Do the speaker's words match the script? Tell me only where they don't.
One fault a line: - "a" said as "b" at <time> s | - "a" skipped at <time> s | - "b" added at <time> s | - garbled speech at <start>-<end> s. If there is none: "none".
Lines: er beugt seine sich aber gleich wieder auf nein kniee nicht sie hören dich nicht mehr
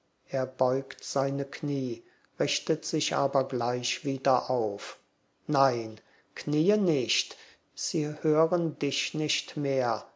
- "knie richtet" added at 1.4 s